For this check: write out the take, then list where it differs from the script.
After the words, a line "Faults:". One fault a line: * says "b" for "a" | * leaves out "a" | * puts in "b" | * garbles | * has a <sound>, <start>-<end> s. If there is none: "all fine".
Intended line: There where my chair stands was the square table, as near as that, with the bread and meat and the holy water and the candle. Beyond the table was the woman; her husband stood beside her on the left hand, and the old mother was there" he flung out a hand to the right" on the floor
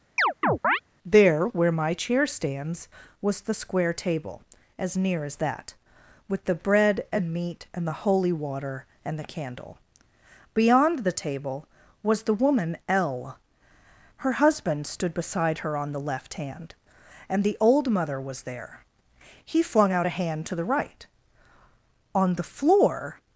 There where my chair stands was the square table, as near as that, with the bread and meat and the holy water and the candle. Beyond the table was the woman; l her husband stood beside her on the left hand, and the old mother was there" he flung out a hand to the right" on the floor
Faults:
* has a chirp, 0.2-0.8 s
* puts in "l"